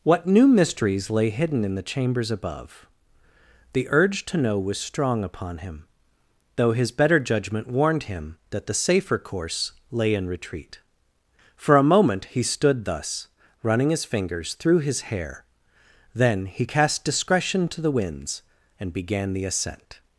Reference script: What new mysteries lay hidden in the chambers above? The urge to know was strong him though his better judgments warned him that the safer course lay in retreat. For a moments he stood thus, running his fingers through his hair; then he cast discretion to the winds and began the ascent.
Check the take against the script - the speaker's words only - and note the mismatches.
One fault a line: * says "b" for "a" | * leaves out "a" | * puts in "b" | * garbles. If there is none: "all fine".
* puts in "upon"
* says "judgment" for "judgments"
* says "moment" for "moments"